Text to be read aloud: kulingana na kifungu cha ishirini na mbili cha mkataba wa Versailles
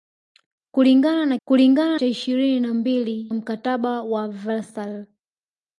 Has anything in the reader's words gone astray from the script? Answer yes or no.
yes